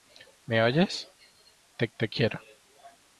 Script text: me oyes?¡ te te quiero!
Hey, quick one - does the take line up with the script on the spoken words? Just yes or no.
yes